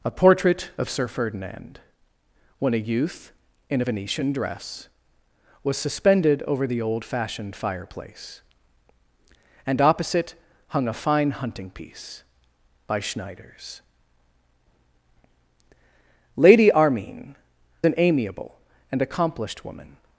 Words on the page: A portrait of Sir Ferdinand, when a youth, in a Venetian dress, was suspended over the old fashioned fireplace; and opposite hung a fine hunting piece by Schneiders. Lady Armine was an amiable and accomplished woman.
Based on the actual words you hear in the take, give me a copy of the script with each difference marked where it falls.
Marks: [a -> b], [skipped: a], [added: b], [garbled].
A portrait of Sir Ferdinand, when a youth, in a Venetian dress, was suspended over the old fashioned fireplace; and opposite hung a fine hunting piece by Schneiders. Lady Armine [skipped: was] an amiable and accomplished woman.